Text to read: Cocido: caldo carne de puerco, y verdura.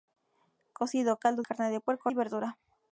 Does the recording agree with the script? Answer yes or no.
yes